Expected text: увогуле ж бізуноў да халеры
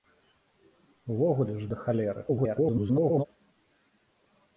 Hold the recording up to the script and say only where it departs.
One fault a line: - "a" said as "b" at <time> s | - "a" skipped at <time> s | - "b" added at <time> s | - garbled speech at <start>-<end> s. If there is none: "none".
- "бізуноў" skipped at 1.7 s
- garbled speech at 2.3-3.3 s